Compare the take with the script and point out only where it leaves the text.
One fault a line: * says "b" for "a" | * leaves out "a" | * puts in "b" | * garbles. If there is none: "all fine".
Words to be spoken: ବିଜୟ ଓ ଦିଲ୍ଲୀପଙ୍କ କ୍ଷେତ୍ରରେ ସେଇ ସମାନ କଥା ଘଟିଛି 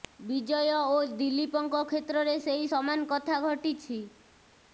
all fine